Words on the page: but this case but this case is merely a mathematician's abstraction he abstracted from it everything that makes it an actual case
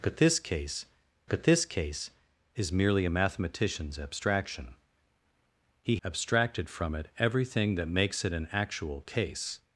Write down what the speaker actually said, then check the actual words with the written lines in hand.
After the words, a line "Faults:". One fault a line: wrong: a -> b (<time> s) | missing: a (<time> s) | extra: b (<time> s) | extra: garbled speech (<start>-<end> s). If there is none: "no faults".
but this case but this case is merely a mathematician's abstraction he abstracted from it everything that makes it an actual case
Faults:
no faults